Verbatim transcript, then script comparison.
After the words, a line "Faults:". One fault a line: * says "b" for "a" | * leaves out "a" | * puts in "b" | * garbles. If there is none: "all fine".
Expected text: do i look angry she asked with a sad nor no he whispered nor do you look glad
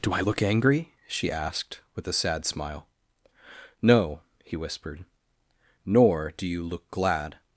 do i look angry she asked with a sad smile no he whispered nor do you look glad
Faults:
* says "smile" for "nor"